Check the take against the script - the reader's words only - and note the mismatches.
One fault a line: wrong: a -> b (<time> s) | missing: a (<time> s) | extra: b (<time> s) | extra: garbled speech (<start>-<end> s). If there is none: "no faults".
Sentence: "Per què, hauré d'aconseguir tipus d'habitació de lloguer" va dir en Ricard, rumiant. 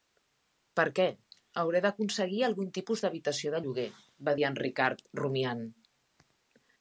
extra: algun (2.5 s)